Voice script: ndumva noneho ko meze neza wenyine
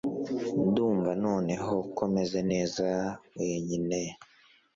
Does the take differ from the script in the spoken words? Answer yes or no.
no